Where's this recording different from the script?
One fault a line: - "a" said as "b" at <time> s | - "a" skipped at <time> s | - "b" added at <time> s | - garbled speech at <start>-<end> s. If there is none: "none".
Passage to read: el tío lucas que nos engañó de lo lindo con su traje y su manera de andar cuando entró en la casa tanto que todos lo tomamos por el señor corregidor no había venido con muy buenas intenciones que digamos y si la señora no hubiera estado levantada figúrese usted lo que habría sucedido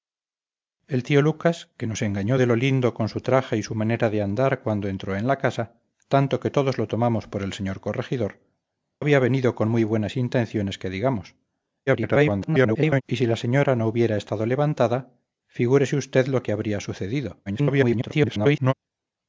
- "no" skipped at 8.4 s
- garbled speech at 11.9-13.0 s
- garbled speech at 17.5-18.7 s